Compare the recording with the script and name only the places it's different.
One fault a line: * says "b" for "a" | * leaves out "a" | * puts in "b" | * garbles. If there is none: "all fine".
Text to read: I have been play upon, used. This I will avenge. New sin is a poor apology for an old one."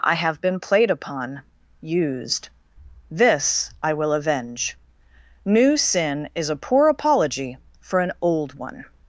* says "played" for "play"